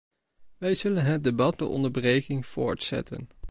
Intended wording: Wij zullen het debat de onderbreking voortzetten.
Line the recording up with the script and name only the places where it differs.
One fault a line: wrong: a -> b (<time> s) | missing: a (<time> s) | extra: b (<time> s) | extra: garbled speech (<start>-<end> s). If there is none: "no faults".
no faults